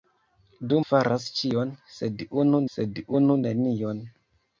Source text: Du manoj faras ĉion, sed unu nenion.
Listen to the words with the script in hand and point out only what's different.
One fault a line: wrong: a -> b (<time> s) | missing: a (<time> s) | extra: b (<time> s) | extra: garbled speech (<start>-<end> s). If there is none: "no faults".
missing: manoj (0.8 s)
extra: sed unu (2.8 s)